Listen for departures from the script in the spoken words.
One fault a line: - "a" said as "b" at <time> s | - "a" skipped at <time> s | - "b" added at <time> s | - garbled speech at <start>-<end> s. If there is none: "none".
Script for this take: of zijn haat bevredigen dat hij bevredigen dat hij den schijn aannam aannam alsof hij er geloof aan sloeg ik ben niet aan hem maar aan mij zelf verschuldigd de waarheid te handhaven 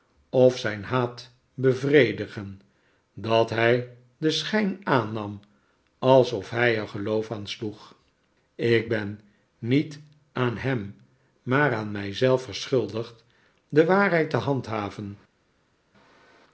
- "bevredigen dat hij" skipped at 4.0 s
- "aannam" skipped at 5.4 s